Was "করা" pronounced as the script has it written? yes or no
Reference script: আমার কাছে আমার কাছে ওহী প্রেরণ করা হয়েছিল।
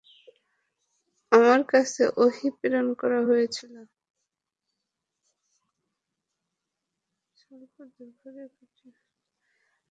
yes